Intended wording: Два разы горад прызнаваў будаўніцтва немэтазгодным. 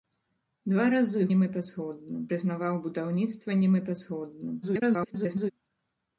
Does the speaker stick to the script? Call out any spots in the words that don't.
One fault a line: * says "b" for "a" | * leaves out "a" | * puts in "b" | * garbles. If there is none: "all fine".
* says "немэтазгодным" for "горад"
* garbles